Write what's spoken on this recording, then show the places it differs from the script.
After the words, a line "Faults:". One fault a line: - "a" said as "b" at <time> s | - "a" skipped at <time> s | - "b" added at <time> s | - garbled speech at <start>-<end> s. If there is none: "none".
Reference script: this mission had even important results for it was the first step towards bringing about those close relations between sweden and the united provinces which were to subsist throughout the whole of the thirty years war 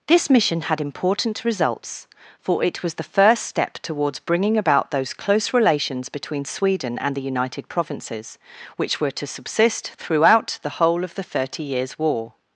this mission had important results for it was the first step towards bringing about those close relations between sweden and the united provinces which were to subsist throughout the whole of the thirty years war
Faults:
- "even" skipped at 0.8 s